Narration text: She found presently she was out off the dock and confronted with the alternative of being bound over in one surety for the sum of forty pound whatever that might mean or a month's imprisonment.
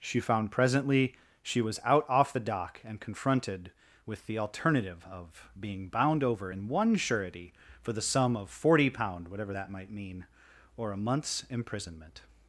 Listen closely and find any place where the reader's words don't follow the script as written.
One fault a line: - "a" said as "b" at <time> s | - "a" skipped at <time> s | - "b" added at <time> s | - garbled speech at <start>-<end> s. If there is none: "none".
none